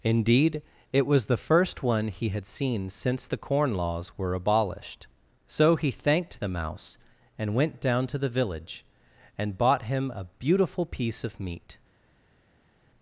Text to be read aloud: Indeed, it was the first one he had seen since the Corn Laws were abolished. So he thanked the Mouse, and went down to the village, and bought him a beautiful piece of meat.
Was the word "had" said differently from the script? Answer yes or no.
no